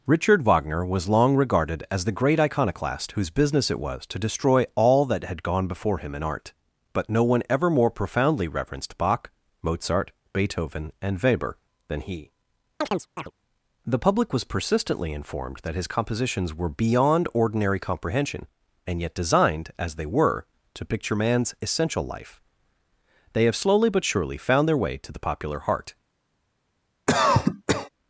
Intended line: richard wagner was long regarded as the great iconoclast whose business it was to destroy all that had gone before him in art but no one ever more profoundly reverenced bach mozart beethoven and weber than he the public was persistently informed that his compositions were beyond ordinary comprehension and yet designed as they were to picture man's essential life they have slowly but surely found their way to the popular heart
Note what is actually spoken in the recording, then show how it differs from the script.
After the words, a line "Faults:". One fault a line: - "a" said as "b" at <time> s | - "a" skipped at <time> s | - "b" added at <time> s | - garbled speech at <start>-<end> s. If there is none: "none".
richard wagner was long regarded as the great iconoclast whose business it was to destroy all that had gone before him in art but no one ever more profoundly reverenced bach mozart beethoven and weber than he the public was persistently informed that his compositions were beyond ordinary comprehension and yet designed as they were to picture man's essential life they have slowly but surely found their way to the popular heart
Faults:
none